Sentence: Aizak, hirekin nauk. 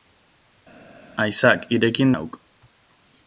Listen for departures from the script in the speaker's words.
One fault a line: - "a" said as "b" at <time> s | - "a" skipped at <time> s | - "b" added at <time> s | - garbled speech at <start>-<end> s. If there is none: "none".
none